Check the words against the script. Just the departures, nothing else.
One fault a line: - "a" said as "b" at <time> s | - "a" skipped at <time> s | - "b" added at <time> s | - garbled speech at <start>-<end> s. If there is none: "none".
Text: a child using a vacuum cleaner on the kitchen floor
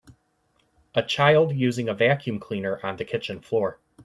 none